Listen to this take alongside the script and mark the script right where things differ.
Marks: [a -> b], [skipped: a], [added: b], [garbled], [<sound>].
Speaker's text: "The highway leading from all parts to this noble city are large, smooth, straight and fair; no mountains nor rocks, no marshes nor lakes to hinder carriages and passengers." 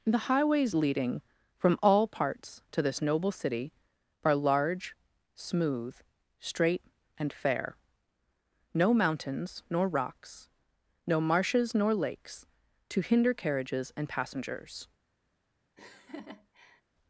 "The [highway -> highways] leading from all parts to this noble city are large, smooth, straight and fair; no mountains nor rocks, no marshes nor lakes to hinder carriages and passengers." [laugh]